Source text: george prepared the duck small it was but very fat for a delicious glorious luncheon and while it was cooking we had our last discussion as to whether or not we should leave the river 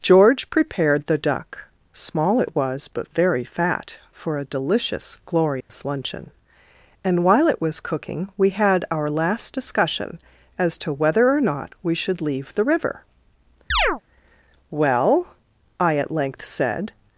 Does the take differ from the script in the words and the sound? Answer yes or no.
yes